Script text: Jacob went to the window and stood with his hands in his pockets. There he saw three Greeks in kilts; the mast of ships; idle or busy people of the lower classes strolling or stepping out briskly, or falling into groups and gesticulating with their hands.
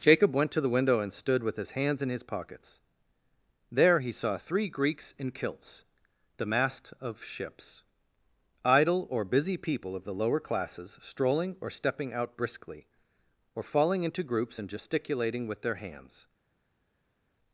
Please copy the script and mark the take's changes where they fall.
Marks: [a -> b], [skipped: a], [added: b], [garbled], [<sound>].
Jacob went to the window and stood with his hands in his pockets. There he saw three Greeks in kilts; the mast of ships; idle or busy people of the lower classes strolling or stepping out briskly, or falling into groups and gesticulating with their hands.